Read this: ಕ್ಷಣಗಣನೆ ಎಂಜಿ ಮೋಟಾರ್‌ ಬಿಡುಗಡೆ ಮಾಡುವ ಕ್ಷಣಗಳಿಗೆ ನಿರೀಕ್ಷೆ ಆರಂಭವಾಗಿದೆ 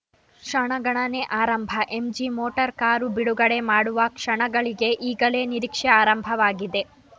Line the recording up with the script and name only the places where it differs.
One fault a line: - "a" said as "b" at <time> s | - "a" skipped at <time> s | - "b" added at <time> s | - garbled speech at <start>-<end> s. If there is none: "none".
- "ಆರಂಭ" added at 1.4 s
- "ಕಾರು" added at 2.8 s
- "ಈಗಲೇ" added at 5.1 s